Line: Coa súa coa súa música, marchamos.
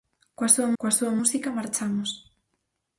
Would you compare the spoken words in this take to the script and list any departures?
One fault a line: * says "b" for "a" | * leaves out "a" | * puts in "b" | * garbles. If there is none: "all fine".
all fine